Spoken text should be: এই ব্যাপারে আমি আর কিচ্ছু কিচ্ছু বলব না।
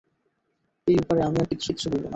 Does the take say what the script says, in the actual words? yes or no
yes